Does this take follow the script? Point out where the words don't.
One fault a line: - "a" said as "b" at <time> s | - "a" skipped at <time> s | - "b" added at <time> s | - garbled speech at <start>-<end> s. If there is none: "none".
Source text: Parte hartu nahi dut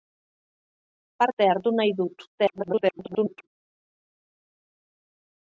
- garbled speech at 2.3-3.5 s